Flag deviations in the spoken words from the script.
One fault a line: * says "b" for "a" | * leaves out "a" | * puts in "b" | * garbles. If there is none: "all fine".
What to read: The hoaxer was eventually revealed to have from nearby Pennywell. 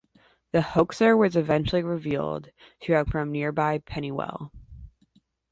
all fine